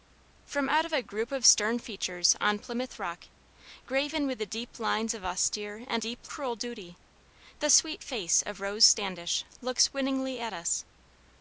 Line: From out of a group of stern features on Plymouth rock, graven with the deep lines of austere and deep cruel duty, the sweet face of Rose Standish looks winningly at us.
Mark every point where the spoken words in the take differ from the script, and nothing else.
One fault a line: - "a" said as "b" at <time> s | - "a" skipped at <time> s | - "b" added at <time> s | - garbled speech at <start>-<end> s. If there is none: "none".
none